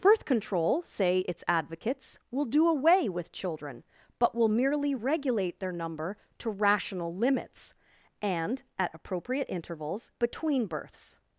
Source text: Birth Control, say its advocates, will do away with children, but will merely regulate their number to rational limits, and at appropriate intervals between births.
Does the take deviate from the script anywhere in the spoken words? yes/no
no